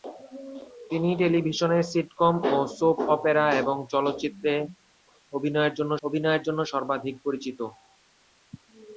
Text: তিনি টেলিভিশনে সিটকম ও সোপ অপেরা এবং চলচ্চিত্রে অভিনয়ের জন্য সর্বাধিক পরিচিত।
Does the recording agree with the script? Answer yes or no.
no